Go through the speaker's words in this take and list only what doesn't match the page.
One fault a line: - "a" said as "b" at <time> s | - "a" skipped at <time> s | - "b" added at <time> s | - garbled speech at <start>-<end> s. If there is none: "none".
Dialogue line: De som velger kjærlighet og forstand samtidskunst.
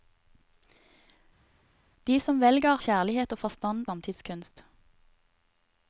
none